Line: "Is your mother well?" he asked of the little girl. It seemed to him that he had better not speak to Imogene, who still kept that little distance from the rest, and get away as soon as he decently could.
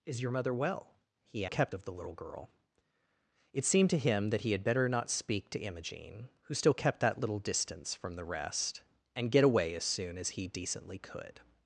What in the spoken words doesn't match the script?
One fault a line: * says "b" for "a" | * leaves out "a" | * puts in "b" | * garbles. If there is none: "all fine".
* says "kept" for "asked"